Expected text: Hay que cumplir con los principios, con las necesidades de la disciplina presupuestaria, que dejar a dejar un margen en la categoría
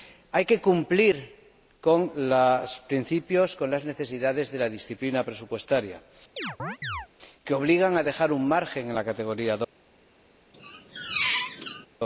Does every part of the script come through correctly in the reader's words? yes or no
no